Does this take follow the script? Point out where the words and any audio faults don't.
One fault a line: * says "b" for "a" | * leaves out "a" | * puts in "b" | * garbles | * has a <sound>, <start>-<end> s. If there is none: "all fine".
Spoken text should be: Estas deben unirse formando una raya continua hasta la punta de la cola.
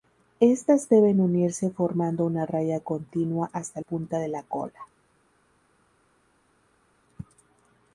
* leaves out "la"